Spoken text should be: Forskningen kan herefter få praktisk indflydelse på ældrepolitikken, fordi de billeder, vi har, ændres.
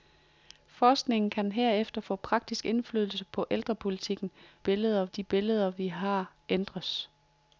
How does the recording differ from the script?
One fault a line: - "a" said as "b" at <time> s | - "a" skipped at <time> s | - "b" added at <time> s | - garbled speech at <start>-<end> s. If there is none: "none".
- "fordi" said as "billeder" at 4.6 s